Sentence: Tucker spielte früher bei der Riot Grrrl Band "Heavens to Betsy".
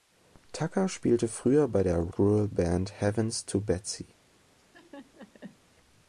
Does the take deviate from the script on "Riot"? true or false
true